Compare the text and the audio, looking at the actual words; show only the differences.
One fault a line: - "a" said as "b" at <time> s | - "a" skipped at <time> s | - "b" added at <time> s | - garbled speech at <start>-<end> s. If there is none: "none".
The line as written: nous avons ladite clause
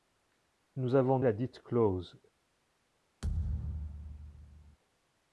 none